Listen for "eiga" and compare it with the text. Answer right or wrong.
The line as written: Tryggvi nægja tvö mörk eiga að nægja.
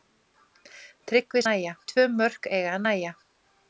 right